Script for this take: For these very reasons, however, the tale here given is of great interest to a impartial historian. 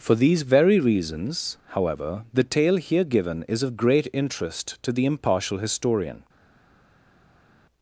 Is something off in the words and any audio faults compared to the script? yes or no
yes